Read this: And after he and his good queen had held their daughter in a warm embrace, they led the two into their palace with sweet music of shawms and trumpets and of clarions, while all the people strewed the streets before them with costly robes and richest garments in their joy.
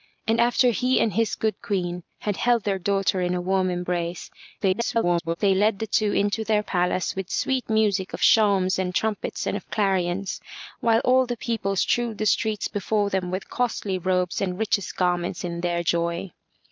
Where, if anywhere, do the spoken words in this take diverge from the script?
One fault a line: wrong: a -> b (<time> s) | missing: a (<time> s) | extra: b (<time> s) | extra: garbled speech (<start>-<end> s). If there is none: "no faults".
extra: garbled speech (4.6-5.4 s)